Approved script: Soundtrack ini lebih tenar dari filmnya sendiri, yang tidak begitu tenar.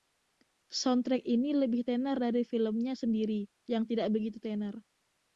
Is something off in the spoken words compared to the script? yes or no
no